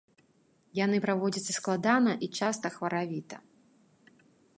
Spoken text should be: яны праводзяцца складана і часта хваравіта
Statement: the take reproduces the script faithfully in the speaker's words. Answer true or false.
true